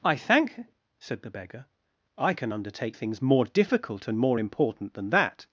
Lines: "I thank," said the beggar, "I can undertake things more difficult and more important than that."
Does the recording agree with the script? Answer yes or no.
yes